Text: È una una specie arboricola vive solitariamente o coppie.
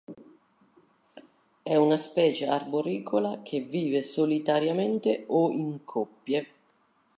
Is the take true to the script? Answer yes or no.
no